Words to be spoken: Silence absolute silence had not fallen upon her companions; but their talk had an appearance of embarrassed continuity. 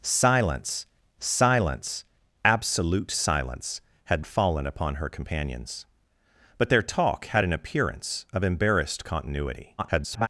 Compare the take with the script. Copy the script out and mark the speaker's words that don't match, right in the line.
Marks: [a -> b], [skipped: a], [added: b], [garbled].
Silence [added: silence] absolute silence had [skipped: not] fallen upon her companions; but their talk had an appearance of embarrassed continuity. [garbled]